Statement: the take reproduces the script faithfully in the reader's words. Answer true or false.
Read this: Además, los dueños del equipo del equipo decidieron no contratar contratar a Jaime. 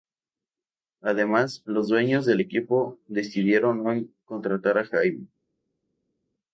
false